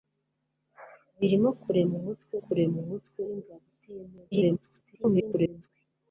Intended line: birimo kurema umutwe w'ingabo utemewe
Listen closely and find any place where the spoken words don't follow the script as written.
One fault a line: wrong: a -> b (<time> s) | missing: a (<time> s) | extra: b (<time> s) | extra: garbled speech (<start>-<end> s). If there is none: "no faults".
extra: kurema umutwe (2.4 s)
extra: garbled speech (4.3-5.7 s)